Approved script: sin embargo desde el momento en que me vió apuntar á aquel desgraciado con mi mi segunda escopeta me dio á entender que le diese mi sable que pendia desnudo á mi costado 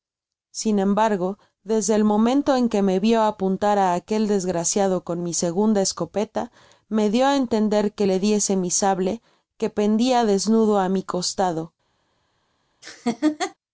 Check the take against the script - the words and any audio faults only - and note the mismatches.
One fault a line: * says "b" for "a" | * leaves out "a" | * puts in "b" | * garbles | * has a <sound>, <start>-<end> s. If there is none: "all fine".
* leaves out "mi"
* has a laugh, 12.8-13.5 s